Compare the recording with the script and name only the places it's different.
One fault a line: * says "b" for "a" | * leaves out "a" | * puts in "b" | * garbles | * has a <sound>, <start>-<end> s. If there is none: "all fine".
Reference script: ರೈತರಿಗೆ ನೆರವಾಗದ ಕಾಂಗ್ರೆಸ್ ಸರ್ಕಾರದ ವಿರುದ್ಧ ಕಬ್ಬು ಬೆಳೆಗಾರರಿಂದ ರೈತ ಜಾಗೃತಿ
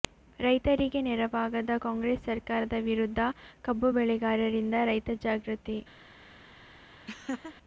* has a laugh, 7.1-7.6 s